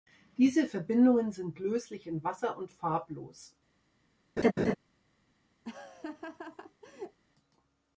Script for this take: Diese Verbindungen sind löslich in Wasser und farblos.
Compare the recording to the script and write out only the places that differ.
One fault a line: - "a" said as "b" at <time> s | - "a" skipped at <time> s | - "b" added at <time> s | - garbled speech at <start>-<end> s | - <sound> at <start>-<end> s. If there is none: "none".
- laugh at 4.4-4.8 s
- laugh at 5.6-7.2 s